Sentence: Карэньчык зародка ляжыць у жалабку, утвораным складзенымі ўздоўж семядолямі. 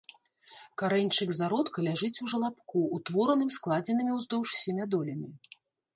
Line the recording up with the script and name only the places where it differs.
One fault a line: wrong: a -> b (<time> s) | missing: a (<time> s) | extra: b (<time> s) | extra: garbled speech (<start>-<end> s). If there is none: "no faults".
no faults